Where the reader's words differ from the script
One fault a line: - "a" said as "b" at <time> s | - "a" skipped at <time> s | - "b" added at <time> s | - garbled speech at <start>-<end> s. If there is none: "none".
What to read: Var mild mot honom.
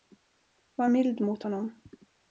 none